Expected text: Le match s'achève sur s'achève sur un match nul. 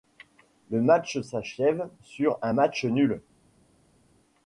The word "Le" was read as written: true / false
true